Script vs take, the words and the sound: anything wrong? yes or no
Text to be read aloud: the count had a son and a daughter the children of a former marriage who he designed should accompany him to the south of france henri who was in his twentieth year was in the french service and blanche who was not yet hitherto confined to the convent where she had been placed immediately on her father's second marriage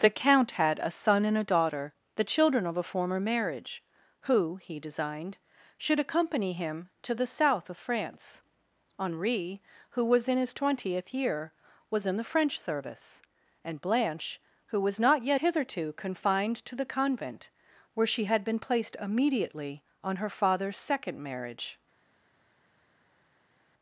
no